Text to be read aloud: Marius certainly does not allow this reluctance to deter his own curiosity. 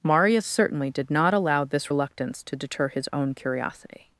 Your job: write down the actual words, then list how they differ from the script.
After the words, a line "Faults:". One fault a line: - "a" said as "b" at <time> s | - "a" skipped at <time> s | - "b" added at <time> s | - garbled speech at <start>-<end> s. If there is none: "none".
Marius certainly did not allow this reluctance to deter his own curiosity.
Faults:
- "does" said as "did" at 0.9 s